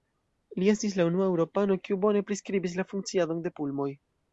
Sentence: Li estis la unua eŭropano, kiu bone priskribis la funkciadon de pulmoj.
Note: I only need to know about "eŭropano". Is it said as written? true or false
true